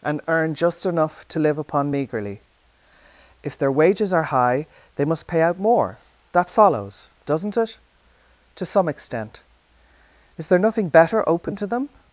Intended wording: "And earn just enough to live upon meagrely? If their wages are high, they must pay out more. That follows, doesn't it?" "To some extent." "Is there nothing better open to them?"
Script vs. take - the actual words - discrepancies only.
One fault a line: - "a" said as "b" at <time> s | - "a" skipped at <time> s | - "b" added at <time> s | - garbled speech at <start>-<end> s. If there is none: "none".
none